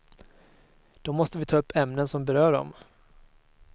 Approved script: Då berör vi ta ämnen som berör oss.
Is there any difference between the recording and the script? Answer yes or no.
yes